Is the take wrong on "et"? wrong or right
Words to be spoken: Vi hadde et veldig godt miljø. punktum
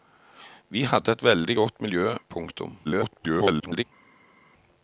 right